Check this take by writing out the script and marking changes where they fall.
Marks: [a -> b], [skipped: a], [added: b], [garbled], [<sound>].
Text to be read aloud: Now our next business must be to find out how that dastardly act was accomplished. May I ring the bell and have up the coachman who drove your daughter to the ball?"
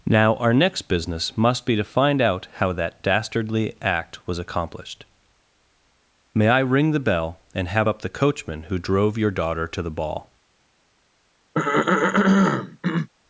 Now our next business must be to find out how that dastardly act was accomplished. May I ring the bell and have up the coachman who drove your daughter to the ball?" [throat clearing]